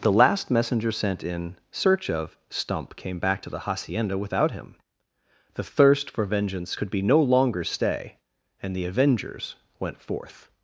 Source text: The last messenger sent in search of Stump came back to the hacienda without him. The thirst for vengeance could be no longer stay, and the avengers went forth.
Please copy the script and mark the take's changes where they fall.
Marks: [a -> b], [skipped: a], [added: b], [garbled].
The last messenger sent in search of Stump came back to the hacienda without him. The thirst for vengeance could be no longer stay, and the avengers went forth.